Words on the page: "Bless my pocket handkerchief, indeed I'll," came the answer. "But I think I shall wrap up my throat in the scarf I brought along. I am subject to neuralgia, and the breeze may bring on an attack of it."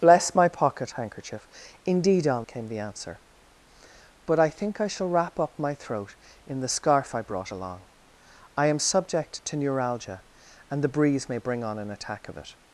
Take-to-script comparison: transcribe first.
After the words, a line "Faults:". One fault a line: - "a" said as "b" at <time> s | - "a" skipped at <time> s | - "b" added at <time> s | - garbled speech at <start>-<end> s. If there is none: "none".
"Bless my pocket handkerchief, indeed I'll," came the answer. "But I think I shall wrap up my throat in the scarf I brought along. I am subject to neuralgia, and the breeze may bring on an attack of it."
Faults:
none